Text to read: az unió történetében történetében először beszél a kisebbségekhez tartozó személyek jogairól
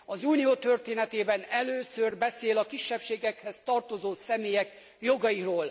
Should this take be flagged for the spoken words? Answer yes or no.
yes